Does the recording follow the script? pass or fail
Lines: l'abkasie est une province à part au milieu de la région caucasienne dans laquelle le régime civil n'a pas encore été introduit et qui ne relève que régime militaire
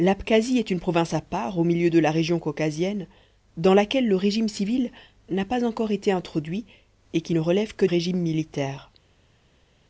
pass